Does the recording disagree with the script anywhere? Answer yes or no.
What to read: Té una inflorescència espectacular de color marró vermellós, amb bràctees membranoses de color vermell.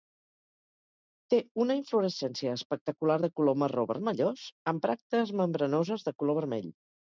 no